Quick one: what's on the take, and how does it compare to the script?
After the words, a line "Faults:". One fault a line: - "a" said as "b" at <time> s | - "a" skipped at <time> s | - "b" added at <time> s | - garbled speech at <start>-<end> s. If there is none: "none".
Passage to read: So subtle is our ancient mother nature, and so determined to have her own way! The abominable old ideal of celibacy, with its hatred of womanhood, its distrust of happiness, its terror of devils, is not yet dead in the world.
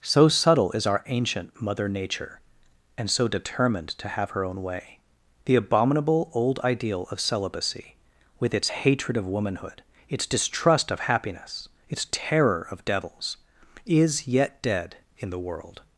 So subtle is our ancient mother nature, and so determined to have her own way! The abominable old ideal of celibacy, with its hatred of womanhood, its distrust of happiness, its terror of devils, is yet dead in the world.
Faults:
- "not" skipped at 14.3 s